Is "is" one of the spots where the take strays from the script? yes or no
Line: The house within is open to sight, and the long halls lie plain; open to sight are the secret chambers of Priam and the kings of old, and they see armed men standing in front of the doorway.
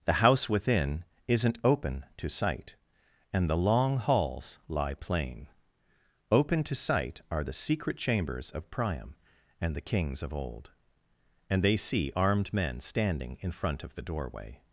yes